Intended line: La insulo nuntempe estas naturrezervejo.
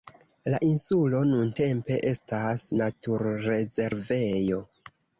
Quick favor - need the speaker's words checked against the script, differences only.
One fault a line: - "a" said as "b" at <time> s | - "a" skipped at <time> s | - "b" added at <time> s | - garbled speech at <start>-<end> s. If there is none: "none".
none